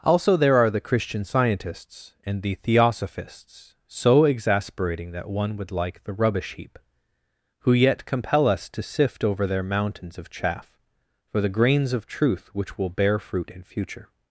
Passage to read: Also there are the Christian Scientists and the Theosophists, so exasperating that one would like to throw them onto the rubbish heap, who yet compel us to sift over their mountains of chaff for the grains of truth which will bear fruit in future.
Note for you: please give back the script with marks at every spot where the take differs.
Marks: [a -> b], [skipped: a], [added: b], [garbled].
Also there are the Christian Scientists and the Theosophists, so exasperating that one would like [skipped: to throw them onto] the rubbish heap, who yet compel us to sift over their mountains of chaff for the grains of truth which will bear fruit in future.